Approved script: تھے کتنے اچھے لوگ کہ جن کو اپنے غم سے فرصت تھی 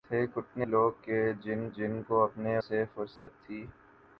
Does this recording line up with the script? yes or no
no